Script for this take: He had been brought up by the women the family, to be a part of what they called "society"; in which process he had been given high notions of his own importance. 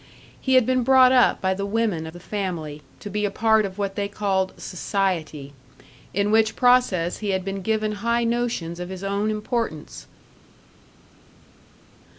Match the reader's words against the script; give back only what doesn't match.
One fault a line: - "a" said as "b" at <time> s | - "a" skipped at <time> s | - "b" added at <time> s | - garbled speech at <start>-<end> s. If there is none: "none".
none